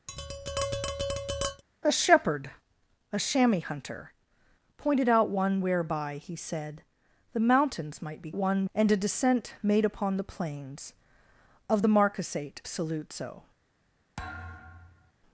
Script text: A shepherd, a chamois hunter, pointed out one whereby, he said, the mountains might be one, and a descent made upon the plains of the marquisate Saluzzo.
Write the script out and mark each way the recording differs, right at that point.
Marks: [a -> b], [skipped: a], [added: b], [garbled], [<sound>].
[tap] A shepherd, a chamois hunter, pointed out one whereby, he said, the mountains might be one, and a descent made upon the plains of the marquisate Saluzzo. [thud]